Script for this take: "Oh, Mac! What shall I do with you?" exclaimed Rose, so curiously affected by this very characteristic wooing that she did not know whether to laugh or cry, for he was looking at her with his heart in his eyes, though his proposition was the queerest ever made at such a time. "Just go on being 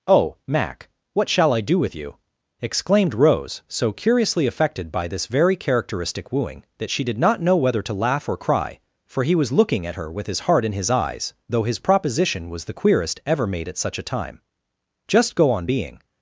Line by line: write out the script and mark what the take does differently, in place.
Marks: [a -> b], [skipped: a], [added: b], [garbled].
"Oh, Mac! What shall I do with you?" exclaimed Rose, so curiously affected by this very characteristic wooing that she did not know whether to laugh or cry, for he was looking at her with his heart in his eyes, though his proposition was the queerest ever made at such a time. "Just go on being